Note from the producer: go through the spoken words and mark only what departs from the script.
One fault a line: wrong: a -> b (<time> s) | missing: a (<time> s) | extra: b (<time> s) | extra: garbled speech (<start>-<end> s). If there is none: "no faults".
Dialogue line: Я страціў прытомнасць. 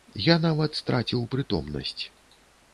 extra: нават (0.5 s)